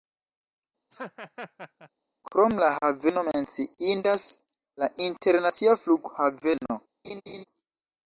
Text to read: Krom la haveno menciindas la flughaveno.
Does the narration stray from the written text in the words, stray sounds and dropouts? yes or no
yes